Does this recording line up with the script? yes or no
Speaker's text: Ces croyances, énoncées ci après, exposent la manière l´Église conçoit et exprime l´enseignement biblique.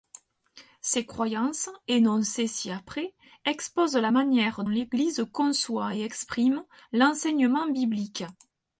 yes